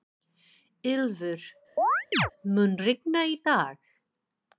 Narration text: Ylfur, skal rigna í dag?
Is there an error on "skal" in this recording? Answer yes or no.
yes